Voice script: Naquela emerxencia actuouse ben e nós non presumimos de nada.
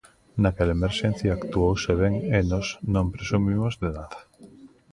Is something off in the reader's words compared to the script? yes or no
no